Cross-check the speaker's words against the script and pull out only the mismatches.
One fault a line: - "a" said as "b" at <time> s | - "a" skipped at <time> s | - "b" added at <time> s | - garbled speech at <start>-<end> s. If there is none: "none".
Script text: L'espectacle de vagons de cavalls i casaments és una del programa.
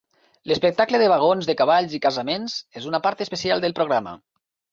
- "part especial" added at 3.1 s